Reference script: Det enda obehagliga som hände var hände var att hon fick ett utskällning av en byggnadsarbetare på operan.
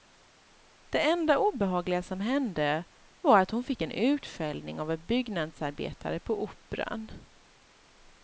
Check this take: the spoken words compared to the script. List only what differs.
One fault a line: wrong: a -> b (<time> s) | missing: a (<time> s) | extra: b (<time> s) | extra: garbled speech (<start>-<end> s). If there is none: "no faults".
missing: hände var (3.4 s)
wrong: ett -> en (3.8 s)